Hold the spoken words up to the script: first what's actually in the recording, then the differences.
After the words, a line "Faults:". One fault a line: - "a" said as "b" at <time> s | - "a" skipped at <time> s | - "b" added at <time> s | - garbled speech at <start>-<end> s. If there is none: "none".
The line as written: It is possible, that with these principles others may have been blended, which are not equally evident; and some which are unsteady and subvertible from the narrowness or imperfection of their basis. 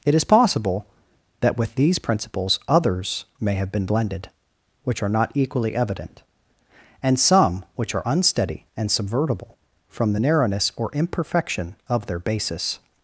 It is possible, that with these principles others may have been blended, which are not equally evident; and some which are unsteady and subvertible from the narrowness or imperfection of their basis.
Faults:
none